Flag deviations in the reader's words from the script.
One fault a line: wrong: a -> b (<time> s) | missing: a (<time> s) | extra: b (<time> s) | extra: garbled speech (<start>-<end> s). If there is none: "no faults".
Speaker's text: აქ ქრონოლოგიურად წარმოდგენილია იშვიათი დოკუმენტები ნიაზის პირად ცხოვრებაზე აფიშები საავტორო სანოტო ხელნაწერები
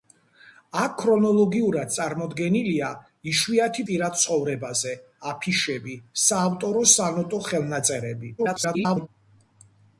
missing: დოკუმენტები ნიაზის (3.9 s)
extra: garbled speech (8.4-9.1 s)